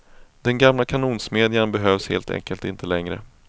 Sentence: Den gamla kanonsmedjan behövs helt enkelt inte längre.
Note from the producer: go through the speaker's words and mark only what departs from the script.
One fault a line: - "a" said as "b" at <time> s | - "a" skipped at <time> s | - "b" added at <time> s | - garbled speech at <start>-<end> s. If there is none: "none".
none